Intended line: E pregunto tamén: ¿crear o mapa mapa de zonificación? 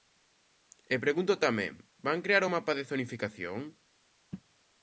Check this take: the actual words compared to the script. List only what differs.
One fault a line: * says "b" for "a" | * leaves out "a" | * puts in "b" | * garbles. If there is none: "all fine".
* puts in "van"
* leaves out "mapa"